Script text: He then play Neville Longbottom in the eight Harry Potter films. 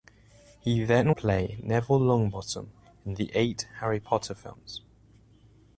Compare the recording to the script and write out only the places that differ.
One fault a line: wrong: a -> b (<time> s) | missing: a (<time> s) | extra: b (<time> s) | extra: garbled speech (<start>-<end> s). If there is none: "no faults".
no faults